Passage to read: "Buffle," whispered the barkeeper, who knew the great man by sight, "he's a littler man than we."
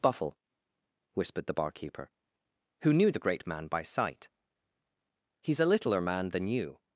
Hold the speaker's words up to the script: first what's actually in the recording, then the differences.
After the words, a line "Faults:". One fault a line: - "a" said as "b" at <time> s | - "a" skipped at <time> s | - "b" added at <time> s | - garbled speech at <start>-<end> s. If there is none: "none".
"Buffle," whispered the barkeeper, who knew the great man by sight, "he's a littler man than you."
Faults:
- "we" said as "you" at 6.5 s